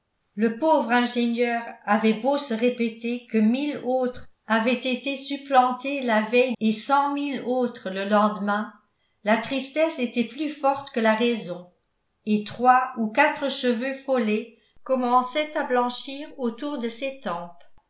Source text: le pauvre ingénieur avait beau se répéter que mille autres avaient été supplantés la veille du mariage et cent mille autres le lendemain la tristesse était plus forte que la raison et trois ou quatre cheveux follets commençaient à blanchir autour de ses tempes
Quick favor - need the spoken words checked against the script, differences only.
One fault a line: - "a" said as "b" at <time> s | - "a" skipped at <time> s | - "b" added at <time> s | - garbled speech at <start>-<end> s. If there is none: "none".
- "du mariage" skipped at 6.5 s